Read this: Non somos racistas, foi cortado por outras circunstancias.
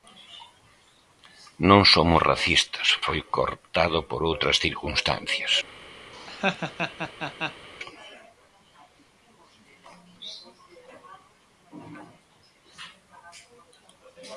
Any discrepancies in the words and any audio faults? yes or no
yes